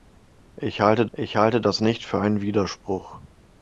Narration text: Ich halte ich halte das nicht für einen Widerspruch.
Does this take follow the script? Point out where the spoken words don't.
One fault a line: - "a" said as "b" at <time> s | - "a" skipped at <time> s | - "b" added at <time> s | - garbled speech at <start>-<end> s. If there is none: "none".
none